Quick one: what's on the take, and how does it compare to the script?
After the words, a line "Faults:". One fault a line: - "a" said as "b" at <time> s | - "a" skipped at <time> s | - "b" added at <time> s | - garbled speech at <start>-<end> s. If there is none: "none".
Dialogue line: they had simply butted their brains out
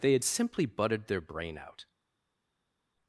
they had simply butted their brain out
Faults:
- "brains" said as "brain" at 1.2 s